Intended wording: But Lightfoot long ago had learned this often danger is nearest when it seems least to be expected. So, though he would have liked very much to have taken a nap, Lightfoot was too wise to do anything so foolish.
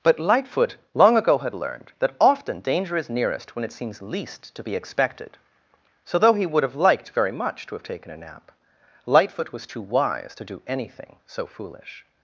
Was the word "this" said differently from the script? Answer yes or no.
yes